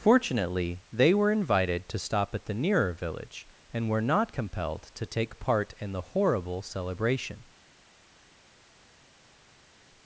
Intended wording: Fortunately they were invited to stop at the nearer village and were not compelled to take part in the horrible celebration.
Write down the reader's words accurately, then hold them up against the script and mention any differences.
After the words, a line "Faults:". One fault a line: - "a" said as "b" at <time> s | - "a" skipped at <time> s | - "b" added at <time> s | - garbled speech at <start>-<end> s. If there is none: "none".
Fortunately they were invited to stop at the nearer village and were not compelled to take part in the horrible celebration.
Faults:
none